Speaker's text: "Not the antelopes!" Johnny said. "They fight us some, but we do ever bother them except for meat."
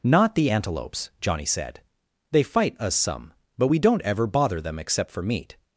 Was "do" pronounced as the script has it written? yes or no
no